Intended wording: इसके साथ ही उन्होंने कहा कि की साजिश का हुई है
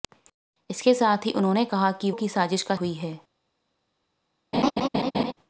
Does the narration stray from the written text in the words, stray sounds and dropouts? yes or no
yes